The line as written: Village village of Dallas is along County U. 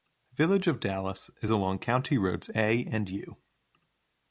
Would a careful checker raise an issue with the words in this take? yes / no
yes